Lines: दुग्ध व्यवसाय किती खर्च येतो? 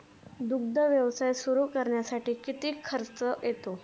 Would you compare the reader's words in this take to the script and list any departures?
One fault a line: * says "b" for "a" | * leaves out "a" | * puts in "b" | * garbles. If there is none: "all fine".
* puts in "सुरू करण्यासाठी"